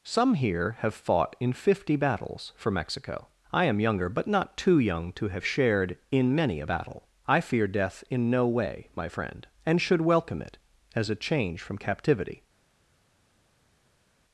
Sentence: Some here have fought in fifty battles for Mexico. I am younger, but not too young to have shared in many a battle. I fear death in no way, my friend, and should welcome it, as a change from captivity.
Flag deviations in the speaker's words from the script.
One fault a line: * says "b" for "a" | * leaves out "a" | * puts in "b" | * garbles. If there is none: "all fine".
all fine